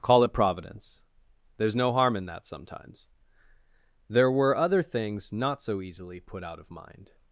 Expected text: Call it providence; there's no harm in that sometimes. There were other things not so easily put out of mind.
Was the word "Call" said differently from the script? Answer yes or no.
no